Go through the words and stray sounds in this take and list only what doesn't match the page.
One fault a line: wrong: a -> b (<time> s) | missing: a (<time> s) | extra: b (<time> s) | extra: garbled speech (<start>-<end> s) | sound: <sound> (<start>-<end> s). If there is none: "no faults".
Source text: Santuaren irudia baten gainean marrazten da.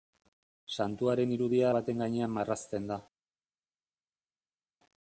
no faults